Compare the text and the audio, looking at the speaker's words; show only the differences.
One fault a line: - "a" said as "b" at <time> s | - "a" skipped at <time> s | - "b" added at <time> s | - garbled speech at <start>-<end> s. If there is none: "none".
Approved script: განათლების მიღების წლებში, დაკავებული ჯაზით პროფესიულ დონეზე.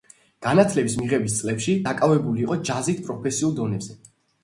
- "იყო" added at 2.5 s